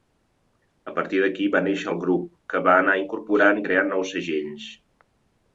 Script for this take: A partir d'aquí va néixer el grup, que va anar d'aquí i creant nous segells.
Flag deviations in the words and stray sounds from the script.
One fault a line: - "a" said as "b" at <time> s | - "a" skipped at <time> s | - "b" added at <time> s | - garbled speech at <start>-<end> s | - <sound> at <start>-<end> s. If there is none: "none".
- "d'aquí" said as "incorporant" at 3.0 s